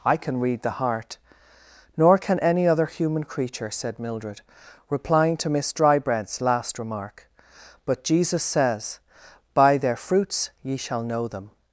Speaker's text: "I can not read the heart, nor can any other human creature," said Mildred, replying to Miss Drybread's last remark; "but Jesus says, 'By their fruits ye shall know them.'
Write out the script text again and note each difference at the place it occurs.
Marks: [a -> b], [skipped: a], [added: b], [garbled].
"I can [skipped: not] read the heart, nor can any other human creature," said Mildred, replying to Miss Drybread's last remark; "but Jesus says, 'By their fruits ye shall know them.'